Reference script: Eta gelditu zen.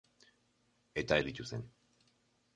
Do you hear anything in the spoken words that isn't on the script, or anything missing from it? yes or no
no